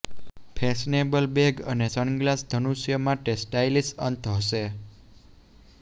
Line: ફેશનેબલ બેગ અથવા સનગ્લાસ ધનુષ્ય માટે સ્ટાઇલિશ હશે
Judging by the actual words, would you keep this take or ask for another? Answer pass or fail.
fail